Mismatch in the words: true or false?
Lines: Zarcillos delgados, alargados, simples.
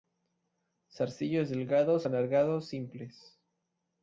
false